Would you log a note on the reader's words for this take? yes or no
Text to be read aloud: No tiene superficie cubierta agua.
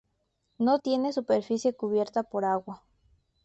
yes